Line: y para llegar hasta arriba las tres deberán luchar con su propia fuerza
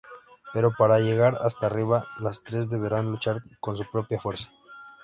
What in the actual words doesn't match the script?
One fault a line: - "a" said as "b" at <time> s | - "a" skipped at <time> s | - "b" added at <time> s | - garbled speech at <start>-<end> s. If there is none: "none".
- "y" said as "pero" at 0.5 s